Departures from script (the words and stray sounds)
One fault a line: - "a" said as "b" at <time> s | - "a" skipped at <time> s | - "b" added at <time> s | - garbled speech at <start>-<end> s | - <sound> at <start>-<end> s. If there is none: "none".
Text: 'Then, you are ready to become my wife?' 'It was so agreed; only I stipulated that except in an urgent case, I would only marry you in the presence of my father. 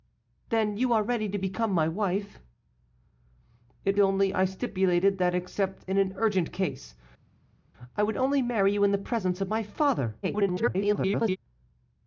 - "was so agreed" skipped at 4.0 s
- garbled speech at 10.2-11.4 s